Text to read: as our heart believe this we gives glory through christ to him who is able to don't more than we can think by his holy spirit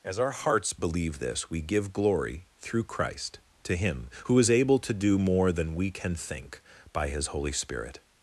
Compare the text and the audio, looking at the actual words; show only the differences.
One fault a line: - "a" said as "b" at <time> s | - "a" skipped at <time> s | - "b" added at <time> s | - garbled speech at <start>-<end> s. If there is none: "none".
- "heart" said as "hearts" at 0.3 s
- "gives" said as "give" at 1.6 s
- "don't" said as "do" at 4.9 s